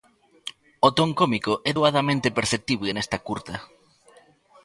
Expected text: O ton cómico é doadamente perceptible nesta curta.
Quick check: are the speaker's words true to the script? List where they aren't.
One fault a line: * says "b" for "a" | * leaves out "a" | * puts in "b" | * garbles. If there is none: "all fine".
all fine